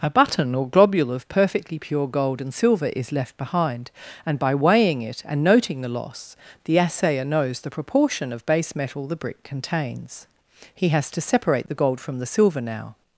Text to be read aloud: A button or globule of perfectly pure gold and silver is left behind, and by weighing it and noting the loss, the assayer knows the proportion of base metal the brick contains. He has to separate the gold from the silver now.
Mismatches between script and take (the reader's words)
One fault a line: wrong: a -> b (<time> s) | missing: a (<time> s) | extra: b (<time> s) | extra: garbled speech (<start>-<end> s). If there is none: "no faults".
no faults